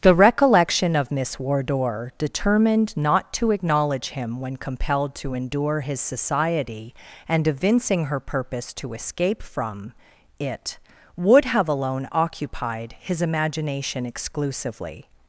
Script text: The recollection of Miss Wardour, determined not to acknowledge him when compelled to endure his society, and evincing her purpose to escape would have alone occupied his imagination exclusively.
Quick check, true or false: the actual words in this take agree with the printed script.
false